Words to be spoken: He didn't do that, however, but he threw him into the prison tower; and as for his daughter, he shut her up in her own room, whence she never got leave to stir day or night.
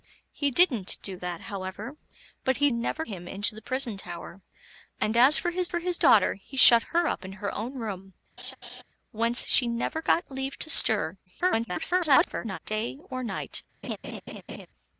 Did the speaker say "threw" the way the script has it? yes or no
no